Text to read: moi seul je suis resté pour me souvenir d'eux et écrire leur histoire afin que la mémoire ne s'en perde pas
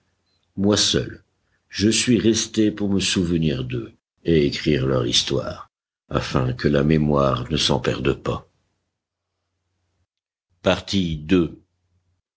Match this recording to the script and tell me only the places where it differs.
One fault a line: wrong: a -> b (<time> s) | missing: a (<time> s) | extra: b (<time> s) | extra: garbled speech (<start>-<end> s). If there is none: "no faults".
no faults